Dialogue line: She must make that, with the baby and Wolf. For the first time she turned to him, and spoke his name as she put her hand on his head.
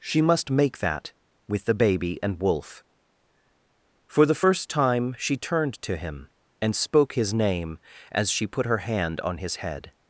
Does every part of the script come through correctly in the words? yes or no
yes